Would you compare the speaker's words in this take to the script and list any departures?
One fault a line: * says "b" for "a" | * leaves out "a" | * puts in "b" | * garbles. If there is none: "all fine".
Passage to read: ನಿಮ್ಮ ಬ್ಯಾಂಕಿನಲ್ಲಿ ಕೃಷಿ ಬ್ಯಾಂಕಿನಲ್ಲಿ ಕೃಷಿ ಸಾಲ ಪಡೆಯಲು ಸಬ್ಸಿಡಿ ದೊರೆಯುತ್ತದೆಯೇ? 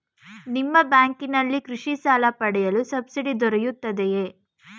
* leaves out "ಬ್ಯಾಂಕಿನಲ್ಲಿ ಕೃಷಿ"